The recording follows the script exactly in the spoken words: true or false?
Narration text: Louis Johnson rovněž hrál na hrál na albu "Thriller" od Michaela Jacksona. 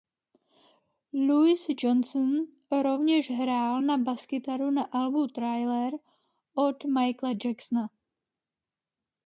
false